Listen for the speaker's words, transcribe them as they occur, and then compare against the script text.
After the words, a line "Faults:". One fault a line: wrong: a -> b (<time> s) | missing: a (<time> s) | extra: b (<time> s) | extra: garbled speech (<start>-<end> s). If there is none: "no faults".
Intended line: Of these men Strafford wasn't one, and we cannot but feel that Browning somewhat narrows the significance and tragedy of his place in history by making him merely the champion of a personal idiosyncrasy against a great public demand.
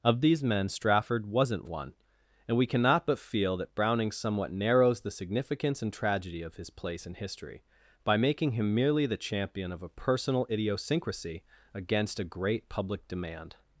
Of these men Strafford wasn't one, and we cannot but feel that Browning somewhat narrows the significance and tragedy of his place in history by making him merely the champion of a personal idiosyncrasy against a great public demand.
Faults:
no faults